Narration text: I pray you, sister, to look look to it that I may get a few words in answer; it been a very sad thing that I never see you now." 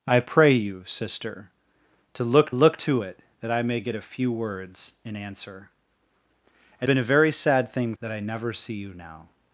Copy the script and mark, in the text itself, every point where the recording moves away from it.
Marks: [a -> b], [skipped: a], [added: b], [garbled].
I pray you, sister, to look look to it that I may get a few words in answer; it been a very sad thing that I never see you now."